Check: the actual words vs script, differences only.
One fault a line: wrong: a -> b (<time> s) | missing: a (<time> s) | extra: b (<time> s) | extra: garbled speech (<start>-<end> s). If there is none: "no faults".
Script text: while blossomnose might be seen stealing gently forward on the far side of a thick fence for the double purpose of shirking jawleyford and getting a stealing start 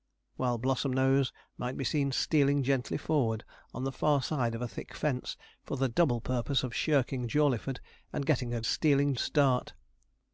no faults